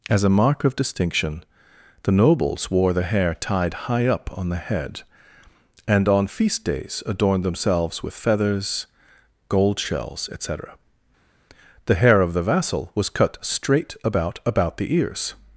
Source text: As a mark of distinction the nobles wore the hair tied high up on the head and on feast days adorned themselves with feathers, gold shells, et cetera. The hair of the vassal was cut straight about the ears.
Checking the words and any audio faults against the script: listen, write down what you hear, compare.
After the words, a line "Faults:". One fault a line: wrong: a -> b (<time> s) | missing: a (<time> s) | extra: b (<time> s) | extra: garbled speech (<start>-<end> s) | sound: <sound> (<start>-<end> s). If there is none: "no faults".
As a mark of distinction the nobles wore the hair tied high up on the head and on feast days adorned themselves with feathers, gold shells, et cetera. The hair of the vassal was cut straight about about the ears.
Faults:
extra: about (14.5 s)